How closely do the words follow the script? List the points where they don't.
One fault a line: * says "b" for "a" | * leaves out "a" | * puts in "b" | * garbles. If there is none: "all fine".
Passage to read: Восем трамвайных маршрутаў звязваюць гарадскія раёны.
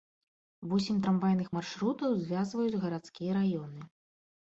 all fine